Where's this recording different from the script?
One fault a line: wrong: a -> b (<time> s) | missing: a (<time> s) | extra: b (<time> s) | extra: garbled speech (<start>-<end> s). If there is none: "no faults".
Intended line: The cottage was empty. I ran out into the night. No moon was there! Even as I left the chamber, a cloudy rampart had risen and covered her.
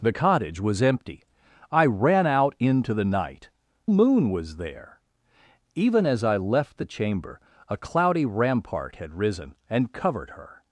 missing: No (3.5 s)